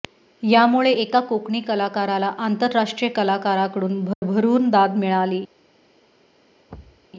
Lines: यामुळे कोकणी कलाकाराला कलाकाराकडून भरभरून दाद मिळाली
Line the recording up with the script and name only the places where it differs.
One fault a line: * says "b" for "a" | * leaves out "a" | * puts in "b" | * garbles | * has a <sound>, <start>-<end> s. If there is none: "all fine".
* puts in "एका"
* puts in "आंतरराष्ट्रीय"
* has a dropout, 4.1-4.2 s
* has a thud, 6.7-7.1 s